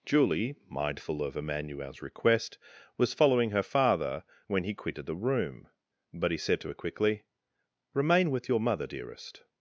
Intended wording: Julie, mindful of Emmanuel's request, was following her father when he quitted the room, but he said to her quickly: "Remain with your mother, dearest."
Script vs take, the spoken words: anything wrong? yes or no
no